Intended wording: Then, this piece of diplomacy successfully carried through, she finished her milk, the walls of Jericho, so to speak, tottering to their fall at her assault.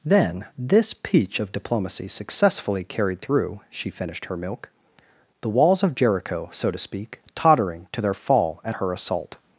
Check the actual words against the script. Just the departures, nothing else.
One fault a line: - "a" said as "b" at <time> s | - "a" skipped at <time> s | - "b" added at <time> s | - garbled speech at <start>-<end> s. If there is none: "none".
- "piece" said as "peach" at 0.9 s